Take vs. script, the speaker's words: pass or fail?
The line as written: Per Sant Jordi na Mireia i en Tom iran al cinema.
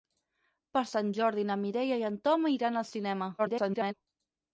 fail